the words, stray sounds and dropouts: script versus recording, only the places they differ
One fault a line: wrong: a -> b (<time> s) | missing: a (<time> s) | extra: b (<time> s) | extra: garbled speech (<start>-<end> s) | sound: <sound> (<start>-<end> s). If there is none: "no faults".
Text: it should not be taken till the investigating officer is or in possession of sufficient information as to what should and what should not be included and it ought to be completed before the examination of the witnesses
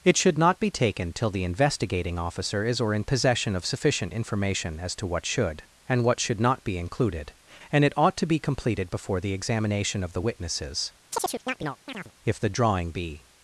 sound: chirp (11.1-12.1 s)
extra: if the drawing be (12.2 s)